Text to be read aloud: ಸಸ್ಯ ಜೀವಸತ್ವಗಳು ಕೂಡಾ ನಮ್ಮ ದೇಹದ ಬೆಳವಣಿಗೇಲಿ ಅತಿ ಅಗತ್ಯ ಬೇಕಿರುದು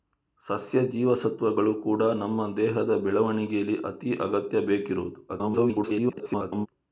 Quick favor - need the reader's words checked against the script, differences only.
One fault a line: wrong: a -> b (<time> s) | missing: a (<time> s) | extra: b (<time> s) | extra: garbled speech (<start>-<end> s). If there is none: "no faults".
extra: garbled speech (5.3-6.7 s)